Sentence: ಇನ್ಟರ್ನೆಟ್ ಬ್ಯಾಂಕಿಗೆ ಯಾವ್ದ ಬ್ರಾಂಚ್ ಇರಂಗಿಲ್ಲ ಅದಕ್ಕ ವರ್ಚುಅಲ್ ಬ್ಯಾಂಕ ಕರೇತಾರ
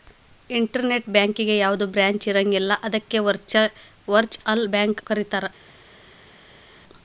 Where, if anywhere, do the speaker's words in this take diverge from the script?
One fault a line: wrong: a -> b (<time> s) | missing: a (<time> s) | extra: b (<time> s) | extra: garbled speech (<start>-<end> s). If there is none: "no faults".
no faults